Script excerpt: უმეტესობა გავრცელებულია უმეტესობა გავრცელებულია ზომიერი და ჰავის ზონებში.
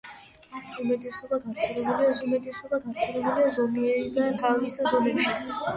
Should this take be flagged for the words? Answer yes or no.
no